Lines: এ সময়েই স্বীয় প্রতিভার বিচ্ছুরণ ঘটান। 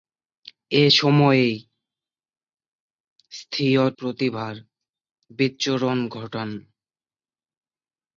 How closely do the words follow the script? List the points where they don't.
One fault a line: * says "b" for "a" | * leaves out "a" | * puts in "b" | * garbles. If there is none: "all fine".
all fine